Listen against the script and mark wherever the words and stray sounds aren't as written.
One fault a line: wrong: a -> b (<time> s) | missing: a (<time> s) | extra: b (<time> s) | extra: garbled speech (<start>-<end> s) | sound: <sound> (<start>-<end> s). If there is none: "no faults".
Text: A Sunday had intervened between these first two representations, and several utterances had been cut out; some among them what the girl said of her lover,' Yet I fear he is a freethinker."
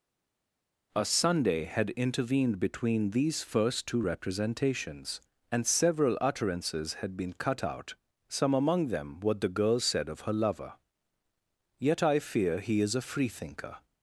no faults